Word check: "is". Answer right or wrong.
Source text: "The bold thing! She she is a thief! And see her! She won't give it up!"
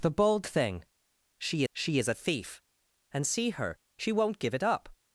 right